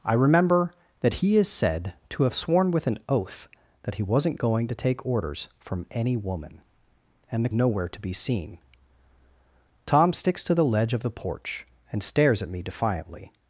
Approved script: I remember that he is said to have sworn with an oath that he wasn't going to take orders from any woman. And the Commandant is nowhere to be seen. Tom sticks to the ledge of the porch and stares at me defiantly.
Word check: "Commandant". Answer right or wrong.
wrong